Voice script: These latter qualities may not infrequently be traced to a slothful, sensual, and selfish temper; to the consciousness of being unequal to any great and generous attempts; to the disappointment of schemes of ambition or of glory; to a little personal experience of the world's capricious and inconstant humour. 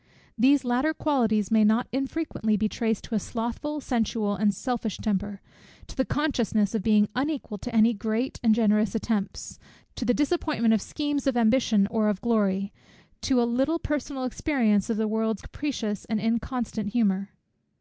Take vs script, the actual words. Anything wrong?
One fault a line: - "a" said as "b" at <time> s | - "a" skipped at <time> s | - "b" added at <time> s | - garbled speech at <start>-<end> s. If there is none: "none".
none